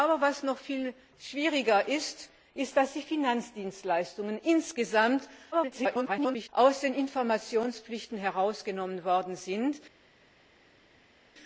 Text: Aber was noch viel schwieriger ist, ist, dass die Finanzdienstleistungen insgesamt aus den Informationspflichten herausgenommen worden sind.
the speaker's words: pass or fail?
fail